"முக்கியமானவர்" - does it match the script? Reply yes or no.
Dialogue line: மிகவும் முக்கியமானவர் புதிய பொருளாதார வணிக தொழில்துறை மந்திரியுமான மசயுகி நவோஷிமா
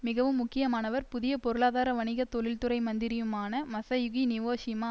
yes